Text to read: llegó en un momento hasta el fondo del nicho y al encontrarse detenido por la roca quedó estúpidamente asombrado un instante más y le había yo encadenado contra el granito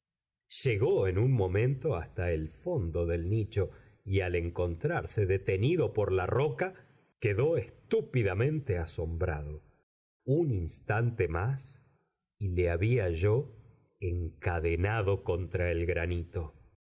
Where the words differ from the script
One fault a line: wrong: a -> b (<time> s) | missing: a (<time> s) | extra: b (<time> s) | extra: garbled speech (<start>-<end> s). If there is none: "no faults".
no faults